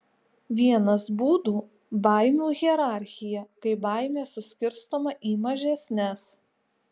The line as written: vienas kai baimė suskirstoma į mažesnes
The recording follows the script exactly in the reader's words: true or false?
false